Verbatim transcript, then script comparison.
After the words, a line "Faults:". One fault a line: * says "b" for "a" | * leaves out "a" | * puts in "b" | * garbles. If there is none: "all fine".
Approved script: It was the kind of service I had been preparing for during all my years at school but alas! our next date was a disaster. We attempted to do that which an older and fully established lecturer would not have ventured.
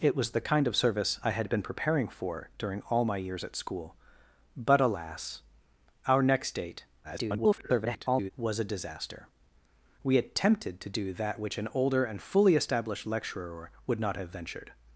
It was the kind of service I had been preparing for during all my years at school but alas! our next date [garbled] was a disaster. We attempted to do that which an older and fully established lecturer would not have ventured.
Faults:
* garbles